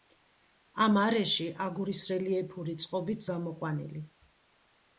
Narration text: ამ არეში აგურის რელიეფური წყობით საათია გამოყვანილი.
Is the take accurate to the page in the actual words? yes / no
no